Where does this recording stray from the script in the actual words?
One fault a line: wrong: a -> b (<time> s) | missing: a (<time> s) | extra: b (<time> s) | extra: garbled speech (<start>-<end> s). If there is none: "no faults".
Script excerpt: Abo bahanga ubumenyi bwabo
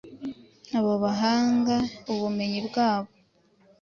no faults